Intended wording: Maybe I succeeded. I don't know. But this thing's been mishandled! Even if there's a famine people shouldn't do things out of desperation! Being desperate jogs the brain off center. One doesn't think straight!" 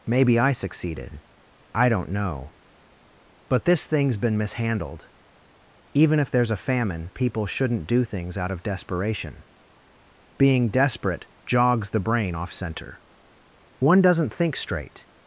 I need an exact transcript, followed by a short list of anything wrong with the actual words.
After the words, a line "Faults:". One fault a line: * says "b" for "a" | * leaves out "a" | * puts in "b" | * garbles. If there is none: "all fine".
Maybe I succeeded. I don't know. But this thing's been mishandled! Even if there's a famine people shouldn't do things out of desperation! Being desperate jogs the brain off center. One doesn't think straight!"
Faults:
all fine